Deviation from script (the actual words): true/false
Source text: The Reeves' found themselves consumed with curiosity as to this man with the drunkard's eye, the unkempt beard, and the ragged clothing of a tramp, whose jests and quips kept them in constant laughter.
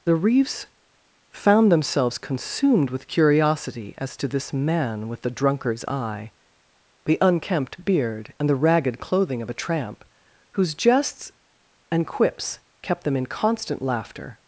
false